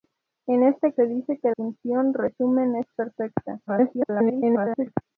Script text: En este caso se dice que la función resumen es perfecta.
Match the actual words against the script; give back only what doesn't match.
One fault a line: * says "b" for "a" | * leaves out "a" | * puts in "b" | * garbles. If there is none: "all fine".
* leaves out "caso"
* leaves out "la"
* garbles